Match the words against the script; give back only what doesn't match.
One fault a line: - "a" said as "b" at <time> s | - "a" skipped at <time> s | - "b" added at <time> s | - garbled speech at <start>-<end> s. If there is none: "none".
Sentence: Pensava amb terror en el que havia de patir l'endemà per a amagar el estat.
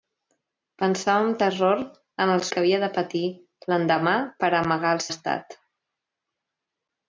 none